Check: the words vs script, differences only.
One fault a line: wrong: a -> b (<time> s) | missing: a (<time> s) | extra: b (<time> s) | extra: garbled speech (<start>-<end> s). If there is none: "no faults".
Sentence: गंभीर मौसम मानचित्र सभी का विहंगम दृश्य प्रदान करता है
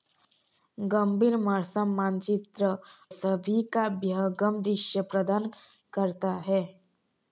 no faults